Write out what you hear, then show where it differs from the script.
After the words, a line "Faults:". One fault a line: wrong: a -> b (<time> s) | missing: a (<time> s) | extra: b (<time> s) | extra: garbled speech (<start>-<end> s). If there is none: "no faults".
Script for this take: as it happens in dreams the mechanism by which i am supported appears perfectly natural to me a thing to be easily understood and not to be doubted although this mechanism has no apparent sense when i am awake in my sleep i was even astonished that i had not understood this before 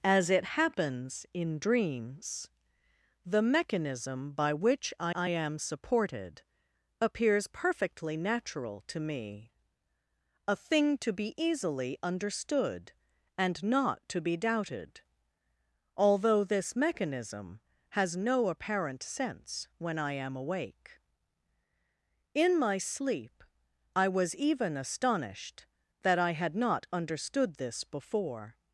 as it happens in dreams the mechanism by which i i am supported appears perfectly natural to me a thing to be easily understood and not to be doubted although this mechanism has no apparent sense when i am awake in my sleep i was even astonished that i had not understood this before
Faults:
extra: i (5.1 s)